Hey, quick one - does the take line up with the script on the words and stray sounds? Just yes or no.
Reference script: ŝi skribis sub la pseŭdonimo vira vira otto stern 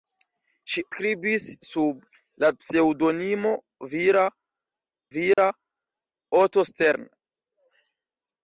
no